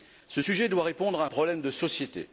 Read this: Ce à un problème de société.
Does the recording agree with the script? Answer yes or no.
no